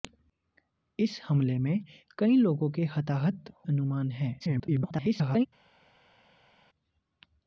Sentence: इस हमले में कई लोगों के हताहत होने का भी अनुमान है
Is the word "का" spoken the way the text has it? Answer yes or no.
no